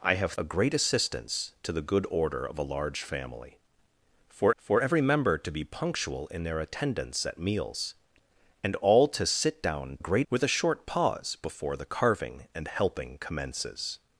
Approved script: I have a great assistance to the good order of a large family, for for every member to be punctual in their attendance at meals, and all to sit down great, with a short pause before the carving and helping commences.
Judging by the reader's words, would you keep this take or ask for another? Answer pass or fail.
pass